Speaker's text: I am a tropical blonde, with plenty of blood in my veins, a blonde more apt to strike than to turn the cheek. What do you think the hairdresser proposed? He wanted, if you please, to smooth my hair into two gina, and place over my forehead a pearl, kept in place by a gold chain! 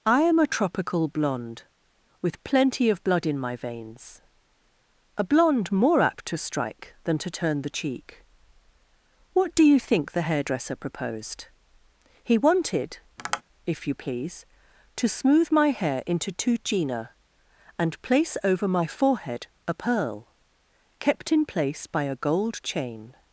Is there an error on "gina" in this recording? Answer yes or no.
no